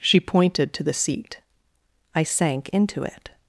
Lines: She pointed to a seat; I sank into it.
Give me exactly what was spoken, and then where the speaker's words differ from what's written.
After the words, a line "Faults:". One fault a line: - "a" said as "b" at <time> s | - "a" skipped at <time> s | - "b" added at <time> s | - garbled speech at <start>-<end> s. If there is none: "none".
She pointed to the seat; I sank into it.
Faults:
- "a" said as "the" at 0.8 s